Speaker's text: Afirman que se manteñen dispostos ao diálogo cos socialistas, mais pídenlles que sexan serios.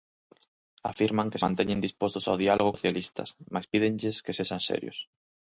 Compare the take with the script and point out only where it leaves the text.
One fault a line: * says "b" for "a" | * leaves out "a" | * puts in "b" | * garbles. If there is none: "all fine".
* leaves out "se"
* leaves out "cos"